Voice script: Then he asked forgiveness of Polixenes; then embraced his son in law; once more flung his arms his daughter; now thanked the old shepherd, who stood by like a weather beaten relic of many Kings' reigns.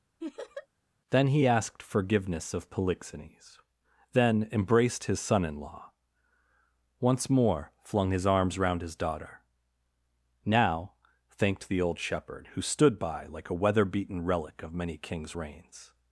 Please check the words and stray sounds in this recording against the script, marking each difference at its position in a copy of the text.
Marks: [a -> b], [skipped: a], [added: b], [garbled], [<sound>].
[laugh] Then he asked forgiveness of Polixenes; then embraced his son in law; once more flung his arms [added: round] his daughter; now thanked the old shepherd, who stood by like a weather beaten relic of many Kings' reigns.